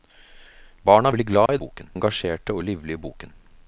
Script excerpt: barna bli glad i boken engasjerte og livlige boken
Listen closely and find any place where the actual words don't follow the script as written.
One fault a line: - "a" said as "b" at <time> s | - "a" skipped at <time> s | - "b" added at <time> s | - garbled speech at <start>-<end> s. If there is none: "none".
none